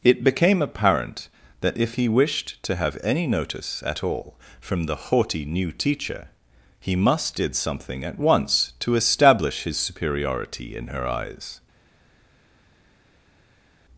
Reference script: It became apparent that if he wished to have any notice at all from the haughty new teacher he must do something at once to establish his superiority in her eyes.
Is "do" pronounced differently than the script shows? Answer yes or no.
yes